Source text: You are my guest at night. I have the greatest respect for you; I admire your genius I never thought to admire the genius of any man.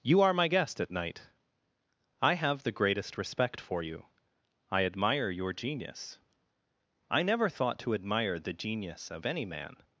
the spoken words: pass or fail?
pass